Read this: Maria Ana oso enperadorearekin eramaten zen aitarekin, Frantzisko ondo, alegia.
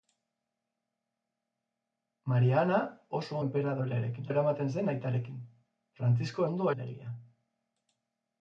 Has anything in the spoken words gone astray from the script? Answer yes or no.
no